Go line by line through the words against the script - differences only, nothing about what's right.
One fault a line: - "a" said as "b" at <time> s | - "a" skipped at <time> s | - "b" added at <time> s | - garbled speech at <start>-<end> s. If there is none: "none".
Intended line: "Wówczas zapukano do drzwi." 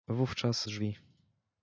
- "zapukano do" skipped at 0.7 s